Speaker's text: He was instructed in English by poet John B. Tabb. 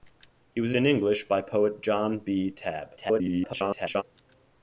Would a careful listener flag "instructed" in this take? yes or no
yes